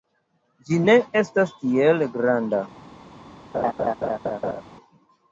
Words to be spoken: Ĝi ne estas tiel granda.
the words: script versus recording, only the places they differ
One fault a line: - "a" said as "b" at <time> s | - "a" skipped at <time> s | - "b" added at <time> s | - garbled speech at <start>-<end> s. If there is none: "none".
none